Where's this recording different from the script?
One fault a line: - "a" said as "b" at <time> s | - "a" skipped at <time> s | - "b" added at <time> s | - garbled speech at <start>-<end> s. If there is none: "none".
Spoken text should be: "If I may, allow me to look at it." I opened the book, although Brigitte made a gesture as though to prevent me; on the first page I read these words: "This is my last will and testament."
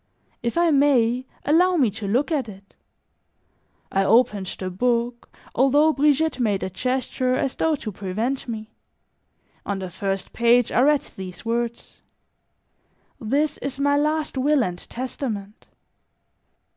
none